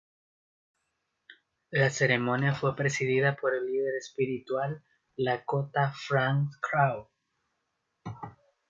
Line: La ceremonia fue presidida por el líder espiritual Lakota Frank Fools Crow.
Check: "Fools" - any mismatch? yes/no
yes